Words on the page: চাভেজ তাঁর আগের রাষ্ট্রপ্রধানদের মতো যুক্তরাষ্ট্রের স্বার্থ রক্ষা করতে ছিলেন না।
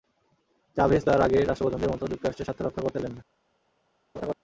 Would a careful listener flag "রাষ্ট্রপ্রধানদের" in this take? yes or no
no